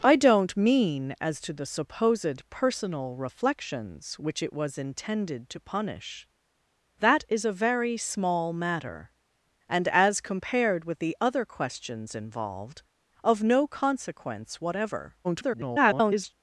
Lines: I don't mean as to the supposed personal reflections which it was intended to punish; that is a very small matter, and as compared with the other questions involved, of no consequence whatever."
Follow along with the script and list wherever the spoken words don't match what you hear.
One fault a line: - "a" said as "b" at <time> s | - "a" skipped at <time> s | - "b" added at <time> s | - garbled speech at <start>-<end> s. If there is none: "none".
- garbled speech at 15.2-16.3 s